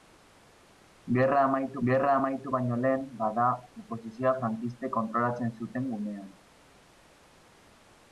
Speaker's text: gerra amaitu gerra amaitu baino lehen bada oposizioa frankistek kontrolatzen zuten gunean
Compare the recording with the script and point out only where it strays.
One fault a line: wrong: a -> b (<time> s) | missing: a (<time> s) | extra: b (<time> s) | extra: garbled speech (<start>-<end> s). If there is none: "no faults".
no faults